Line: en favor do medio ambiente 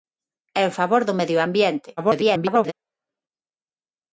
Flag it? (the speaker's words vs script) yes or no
yes